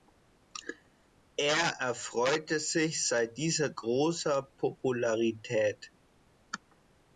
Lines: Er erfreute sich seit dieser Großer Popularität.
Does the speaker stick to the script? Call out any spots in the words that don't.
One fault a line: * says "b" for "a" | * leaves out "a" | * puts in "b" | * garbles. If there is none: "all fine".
all fine